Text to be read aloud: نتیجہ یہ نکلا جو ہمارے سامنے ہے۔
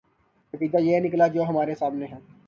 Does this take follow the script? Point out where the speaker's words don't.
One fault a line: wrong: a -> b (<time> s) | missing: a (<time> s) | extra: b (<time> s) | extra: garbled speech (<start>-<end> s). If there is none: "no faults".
no faults